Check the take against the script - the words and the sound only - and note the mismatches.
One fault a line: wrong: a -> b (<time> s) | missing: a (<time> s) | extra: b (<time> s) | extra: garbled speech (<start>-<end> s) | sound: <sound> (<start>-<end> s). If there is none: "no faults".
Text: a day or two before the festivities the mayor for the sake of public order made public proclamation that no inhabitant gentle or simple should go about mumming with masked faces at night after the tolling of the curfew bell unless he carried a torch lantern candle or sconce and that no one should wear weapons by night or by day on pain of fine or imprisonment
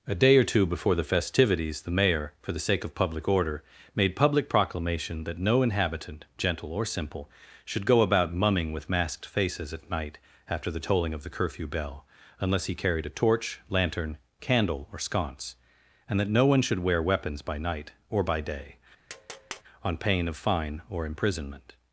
sound: tap (19.1-19.6 s)